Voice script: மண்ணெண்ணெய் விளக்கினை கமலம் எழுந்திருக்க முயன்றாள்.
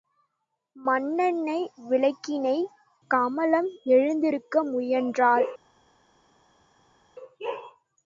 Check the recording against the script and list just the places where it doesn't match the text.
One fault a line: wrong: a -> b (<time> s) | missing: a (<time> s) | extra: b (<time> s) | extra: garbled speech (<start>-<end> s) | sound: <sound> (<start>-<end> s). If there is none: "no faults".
no faults